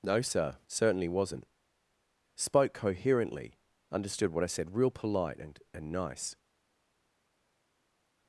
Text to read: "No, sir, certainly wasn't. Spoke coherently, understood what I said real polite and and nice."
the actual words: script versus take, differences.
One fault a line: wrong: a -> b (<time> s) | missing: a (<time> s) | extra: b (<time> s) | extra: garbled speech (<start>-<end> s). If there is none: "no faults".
no faults